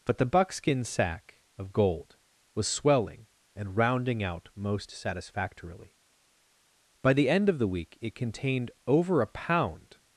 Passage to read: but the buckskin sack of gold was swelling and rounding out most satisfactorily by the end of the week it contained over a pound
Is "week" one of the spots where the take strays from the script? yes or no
no